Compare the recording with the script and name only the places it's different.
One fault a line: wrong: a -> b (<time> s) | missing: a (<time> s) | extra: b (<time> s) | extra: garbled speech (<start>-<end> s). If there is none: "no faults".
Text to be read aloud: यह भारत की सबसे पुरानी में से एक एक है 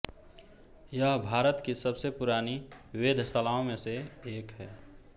extra: वेधशालाओं (3.0 s)
missing: एक (4.5 s)